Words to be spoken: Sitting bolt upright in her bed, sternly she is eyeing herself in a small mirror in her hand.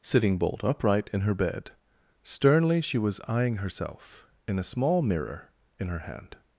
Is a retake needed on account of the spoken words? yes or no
yes